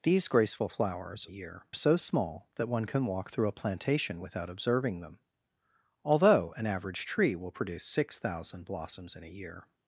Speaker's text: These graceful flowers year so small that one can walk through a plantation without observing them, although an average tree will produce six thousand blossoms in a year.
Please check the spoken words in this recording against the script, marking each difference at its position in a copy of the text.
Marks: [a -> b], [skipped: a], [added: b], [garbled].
These graceful flowers year so small that one can walk through a plantation without observing them, although an average tree will produce six thousand blossoms in a year.